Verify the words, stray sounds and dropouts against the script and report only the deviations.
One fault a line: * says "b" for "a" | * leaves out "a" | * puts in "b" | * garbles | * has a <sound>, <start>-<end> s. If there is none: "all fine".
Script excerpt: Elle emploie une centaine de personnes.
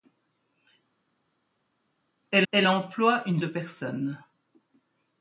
* puts in "elle"
* leaves out "centaine"